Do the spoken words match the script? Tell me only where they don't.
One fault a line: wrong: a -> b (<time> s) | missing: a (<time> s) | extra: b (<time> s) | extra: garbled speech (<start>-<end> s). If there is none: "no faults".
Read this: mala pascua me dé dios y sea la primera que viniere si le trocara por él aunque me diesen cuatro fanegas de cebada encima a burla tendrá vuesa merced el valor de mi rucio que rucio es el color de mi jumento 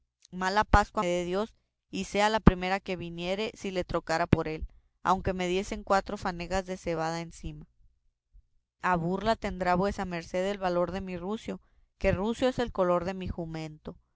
missing: me (1.0 s)